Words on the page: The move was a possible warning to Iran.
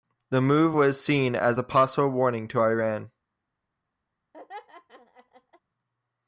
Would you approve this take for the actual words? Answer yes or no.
no